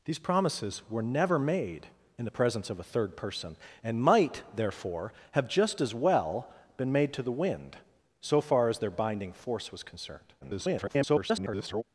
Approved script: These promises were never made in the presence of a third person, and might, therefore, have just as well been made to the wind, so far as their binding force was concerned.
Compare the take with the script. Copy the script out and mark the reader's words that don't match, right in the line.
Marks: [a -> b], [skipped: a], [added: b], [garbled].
These promises were never made in the presence of a third person, and might, therefore, have just as well been made to the wind, so far as their binding force was concerned. [garbled]